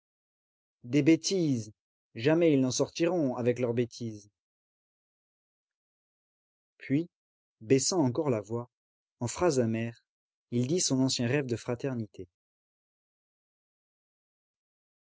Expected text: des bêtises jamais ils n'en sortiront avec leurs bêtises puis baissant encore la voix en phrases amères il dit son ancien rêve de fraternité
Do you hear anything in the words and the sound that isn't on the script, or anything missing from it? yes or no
no